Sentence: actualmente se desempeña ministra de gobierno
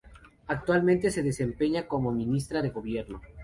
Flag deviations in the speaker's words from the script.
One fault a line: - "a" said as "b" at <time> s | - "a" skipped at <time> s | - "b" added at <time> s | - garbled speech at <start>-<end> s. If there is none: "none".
- "como" added at 1.9 s